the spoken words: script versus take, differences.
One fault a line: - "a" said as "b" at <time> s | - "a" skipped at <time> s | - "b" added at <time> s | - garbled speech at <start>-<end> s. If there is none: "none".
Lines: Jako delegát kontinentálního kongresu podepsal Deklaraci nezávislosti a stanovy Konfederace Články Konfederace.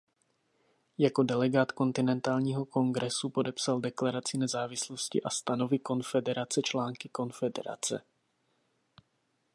none